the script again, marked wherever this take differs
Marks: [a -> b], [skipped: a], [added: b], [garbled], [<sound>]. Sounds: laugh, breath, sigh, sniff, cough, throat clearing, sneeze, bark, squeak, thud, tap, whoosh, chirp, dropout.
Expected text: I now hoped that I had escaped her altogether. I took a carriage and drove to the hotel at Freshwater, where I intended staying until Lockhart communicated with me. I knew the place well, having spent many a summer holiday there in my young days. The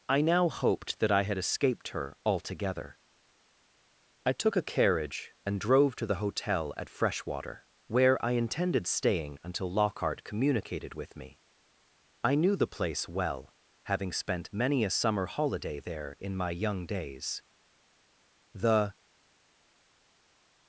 I now hoped that I had escaped her altogether. I took a carriage and drove to the hotel at Freshwater, where I intended staying until Lockhart communicated with me. I knew the place well, having spent many a summer holiday there in my young days. The